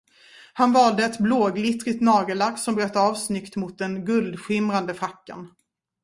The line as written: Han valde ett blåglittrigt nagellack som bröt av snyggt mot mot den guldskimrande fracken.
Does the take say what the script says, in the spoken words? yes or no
no